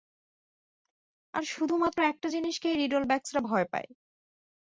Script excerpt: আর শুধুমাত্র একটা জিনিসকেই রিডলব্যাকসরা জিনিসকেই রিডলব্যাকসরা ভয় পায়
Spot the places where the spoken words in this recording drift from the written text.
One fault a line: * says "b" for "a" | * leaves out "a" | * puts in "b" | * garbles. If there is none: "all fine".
* leaves out "জিনিসকেই রিডলব্যাকসরা"